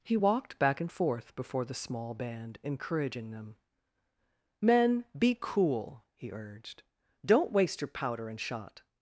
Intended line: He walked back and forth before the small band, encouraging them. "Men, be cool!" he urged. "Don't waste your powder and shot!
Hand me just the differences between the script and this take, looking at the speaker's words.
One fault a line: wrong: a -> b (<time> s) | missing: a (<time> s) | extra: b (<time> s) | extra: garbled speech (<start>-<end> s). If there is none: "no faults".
no faults